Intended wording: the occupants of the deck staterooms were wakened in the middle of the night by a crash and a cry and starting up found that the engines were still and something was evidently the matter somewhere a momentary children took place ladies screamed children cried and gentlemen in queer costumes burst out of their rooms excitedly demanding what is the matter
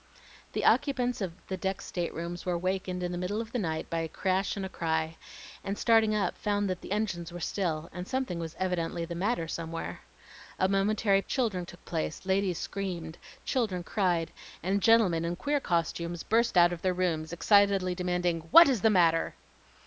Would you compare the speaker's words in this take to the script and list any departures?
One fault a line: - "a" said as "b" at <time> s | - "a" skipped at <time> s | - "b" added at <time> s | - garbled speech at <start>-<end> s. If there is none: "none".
none